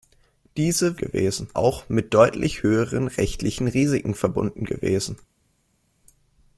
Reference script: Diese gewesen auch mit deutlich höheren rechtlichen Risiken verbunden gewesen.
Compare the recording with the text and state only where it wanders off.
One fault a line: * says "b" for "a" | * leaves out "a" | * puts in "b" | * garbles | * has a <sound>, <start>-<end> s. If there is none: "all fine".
all fine